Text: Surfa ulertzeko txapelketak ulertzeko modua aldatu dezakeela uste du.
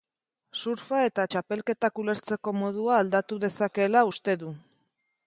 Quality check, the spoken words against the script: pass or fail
fail